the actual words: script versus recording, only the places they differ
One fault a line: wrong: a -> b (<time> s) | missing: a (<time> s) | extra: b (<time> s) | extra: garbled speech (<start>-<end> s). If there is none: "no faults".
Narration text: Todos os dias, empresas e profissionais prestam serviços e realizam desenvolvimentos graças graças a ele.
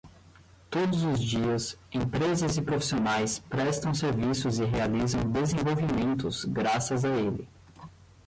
missing: graças (7.0 s)